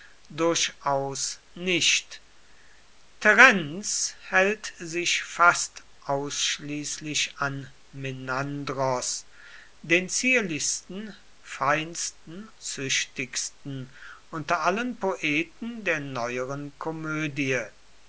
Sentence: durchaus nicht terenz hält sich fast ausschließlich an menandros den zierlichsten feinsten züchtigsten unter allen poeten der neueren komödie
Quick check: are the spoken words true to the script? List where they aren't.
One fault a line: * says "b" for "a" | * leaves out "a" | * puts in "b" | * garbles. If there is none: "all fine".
all fine